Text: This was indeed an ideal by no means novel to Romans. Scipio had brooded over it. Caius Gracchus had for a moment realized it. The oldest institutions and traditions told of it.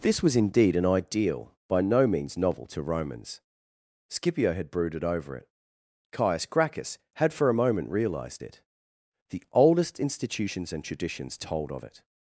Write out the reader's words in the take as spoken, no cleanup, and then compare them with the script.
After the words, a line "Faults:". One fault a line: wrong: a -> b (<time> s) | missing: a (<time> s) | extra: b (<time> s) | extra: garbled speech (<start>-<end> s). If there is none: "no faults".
This was indeed an ideal by no means novel to Romans. Scipio had brooded over it. Caius Gracchus had for a moment realized it. The oldest institutions and traditions told of it.
Faults:
no faults